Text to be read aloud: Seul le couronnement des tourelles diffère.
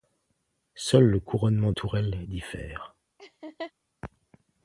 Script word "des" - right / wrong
wrong